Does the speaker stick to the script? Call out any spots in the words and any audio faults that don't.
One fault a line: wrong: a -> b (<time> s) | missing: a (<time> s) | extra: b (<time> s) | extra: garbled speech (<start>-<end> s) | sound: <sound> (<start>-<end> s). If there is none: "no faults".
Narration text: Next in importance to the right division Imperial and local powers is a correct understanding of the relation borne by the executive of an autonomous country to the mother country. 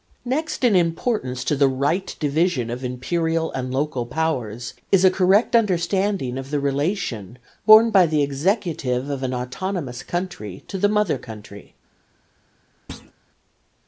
extra: of (2.7 s)
sound: thud (12.9-13.1 s)